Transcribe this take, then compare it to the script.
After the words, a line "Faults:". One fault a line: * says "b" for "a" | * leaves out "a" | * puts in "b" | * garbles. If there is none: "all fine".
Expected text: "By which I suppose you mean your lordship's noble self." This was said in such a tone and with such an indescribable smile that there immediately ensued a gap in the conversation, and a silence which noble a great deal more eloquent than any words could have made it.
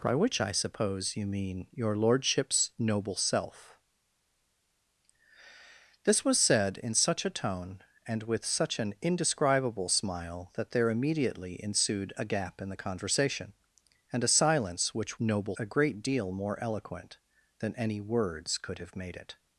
"By which I suppose you mean your lordship's noble self." This was said in such a tone and with such an indescribable smile that there immediately ensued a gap in the conversation, and a silence which noble a great deal more eloquent than any words could have made it.
Faults:
all fine